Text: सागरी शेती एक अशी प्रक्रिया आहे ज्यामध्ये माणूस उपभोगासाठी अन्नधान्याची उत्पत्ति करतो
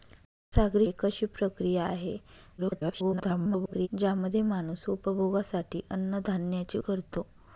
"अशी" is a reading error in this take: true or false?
false